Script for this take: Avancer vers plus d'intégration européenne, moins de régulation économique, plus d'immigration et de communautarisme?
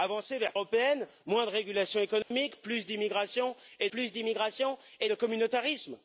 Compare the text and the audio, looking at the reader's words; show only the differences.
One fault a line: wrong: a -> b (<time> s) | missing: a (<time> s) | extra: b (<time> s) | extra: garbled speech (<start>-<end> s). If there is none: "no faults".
missing: plus d'intégration (0.5 s)
extra: plus d'immigration et (3.9 s)